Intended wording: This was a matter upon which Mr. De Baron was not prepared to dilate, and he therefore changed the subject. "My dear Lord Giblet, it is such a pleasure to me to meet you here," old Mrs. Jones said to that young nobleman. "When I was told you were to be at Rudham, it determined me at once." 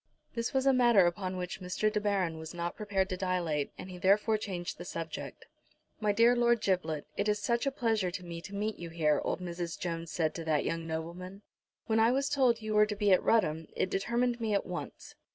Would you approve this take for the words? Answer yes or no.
yes